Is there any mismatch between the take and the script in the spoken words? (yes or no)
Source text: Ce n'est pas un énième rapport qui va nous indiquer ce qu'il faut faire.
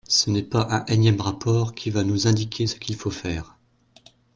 no